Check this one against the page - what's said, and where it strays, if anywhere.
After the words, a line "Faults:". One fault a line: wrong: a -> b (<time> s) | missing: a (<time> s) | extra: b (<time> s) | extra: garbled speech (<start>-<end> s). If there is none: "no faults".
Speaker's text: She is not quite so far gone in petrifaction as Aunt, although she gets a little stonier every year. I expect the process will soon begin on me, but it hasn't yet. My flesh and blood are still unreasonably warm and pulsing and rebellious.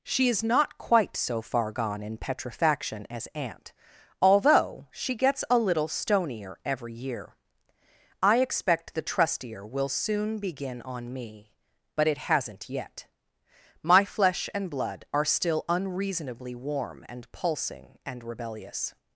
She is not quite so far gone in petrifaction as Aunt, although she gets a little stonier every year. I expect the trustier will soon begin on me, but it hasn't yet. My flesh and blood are still unreasonably warm and pulsing and rebellious.
Faults:
wrong: process -> trustier (9.0 s)